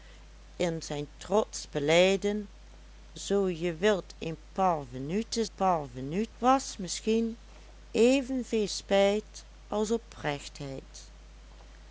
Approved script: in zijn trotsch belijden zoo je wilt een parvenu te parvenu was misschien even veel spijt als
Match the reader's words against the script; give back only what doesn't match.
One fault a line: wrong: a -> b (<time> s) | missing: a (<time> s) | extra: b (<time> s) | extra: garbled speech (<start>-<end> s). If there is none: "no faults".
no faults